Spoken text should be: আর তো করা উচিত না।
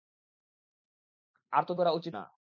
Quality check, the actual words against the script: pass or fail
pass